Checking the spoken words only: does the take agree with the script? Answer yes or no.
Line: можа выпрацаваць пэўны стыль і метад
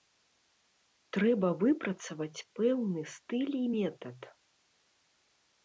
no